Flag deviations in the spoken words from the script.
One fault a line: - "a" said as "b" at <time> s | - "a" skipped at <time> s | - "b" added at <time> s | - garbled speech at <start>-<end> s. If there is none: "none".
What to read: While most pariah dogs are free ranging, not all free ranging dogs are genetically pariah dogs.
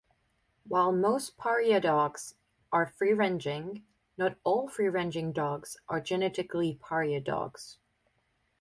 none